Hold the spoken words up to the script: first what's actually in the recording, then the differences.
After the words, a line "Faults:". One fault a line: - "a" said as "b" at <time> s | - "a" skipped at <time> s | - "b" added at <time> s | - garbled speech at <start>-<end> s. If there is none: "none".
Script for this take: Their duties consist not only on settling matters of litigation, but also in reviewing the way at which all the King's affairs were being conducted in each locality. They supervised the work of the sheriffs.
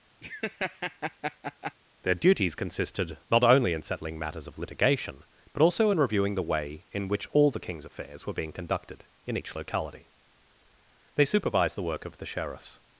Their duties consisted not only in settling matters of litigation, but also in reviewing the way in which all the King's affairs were being conducted in each locality. They supervised the work of the sheriffs.
Faults:
- "consist" said as "consisted" at 2.5 s
- "on" said as "in" at 3.7 s
- "at" said as "in" at 6.9 s